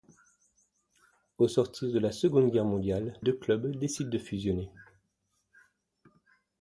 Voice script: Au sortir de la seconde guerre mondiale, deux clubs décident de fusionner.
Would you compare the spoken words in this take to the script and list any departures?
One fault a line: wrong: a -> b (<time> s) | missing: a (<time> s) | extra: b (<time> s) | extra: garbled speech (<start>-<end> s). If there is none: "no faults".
no faults